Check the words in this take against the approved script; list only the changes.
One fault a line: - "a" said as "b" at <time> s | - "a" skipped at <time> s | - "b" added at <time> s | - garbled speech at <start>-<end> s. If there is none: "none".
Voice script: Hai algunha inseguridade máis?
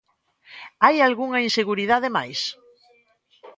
none